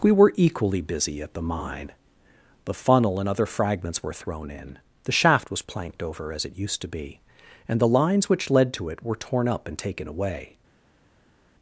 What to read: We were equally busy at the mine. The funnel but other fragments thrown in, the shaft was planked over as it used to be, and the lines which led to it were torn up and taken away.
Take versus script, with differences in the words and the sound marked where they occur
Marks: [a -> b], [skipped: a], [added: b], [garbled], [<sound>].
We were equally busy at the mine. The funnel [but -> and] other fragments [added: were] thrown in, the shaft was planked over as it used to be, and the lines which led to it were torn up and taken away.